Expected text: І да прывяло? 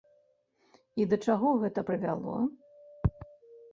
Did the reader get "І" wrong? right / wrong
right